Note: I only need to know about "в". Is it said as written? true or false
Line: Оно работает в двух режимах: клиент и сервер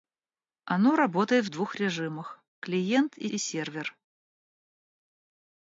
true